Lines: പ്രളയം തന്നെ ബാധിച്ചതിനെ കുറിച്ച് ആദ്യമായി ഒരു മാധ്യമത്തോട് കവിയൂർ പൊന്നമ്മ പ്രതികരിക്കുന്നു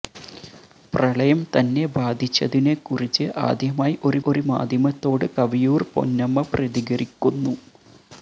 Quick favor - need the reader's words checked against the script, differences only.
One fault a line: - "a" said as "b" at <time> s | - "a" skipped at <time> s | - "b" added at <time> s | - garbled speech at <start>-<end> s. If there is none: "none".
- "ഒരു" added at 4.3 s